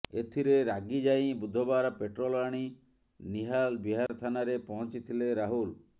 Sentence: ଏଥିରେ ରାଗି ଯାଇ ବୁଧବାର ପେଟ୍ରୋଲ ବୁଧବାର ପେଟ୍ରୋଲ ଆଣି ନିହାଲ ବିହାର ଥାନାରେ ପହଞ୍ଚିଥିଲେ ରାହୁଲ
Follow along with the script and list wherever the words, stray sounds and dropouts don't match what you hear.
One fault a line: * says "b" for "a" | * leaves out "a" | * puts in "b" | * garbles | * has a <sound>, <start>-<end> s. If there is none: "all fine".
* leaves out "ବୁଧବାର ପେଟ୍ରୋଲ"
* has a dropout, 4.1-4.1 s